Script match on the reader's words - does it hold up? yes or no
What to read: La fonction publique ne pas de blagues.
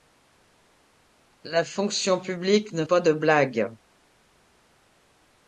yes